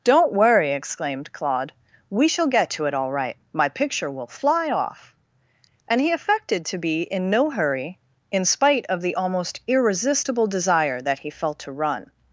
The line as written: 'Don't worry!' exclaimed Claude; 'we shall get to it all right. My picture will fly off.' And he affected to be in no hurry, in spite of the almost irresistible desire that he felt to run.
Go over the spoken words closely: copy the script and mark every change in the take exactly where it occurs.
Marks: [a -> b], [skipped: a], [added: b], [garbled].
'Don't worry!' exclaimed Claude; 'we shall get to it all right. My picture will fly off.' And he affected to be in no hurry, in spite of the almost irresistible desire that he felt to run.